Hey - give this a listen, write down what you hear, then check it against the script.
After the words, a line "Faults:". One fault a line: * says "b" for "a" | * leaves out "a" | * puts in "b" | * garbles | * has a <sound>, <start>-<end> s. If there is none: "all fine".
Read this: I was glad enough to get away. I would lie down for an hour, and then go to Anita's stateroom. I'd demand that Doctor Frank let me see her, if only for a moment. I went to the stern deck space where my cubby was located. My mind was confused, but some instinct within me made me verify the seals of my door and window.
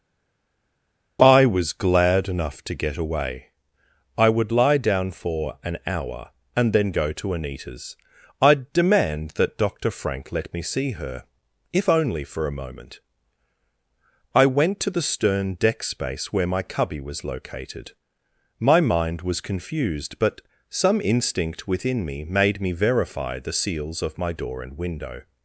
I was glad enough to get away. I would lie down for an hour, and then go to Anita's. I'd demand that Doctor Frank let me see her, if only for a moment. I went to the stern deck space where my cubby was located. My mind was confused, but some instinct within me made me verify the seals of my door and window.
Faults:
* leaves out "stateroom"